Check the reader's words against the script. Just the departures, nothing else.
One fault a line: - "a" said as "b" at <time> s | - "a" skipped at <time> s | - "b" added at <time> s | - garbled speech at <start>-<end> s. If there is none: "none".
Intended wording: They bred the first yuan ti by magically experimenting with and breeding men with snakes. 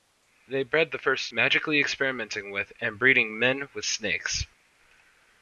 - "yuan ti by" skipped at 1.3 s